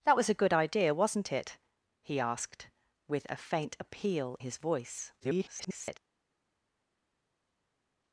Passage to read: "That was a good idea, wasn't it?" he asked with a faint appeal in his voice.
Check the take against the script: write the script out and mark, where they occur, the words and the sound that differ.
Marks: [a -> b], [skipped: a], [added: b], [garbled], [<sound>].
"That was a good idea, wasn't it?" he asked with a faint appeal [skipped: in] his voice. [garbled]